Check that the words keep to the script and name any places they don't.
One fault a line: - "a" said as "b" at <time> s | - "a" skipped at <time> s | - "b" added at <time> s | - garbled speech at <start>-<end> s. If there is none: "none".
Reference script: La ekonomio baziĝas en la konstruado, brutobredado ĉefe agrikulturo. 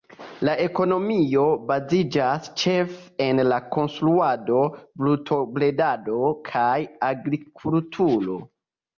- "ĉefe" added at 2.6 s
- "ĉefe" said as "kaj" at 6.5 s